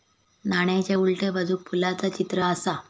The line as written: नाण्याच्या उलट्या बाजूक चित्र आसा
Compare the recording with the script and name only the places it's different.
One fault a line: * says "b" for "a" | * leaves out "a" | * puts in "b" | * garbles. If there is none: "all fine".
* puts in "फुलाचा"